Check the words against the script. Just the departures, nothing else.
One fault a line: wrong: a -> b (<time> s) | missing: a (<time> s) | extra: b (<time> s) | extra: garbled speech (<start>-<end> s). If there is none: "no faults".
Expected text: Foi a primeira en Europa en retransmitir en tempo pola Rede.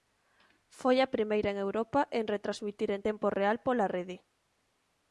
extra: real (3.4 s)